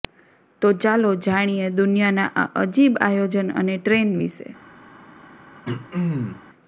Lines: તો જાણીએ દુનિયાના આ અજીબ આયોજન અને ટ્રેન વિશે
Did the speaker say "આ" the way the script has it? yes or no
yes